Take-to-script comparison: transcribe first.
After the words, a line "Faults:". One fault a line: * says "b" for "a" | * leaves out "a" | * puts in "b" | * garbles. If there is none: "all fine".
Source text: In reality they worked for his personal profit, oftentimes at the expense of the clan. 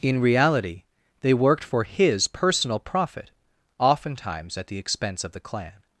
In reality they worked for his personal profit, oftentimes at the expense of the clan.
Faults:
all fine